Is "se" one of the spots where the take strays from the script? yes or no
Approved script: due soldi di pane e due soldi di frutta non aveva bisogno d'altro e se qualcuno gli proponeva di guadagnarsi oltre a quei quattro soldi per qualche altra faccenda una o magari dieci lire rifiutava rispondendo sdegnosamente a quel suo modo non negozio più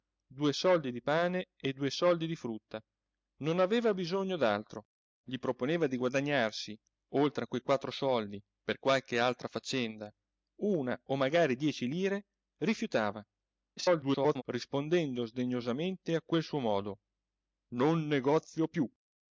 yes